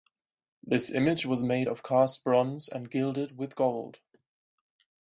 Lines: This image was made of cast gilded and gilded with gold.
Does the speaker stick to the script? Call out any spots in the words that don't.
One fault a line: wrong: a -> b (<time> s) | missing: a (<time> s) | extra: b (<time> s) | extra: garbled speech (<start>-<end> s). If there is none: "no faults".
wrong: gilded -> bronze (2.2 s)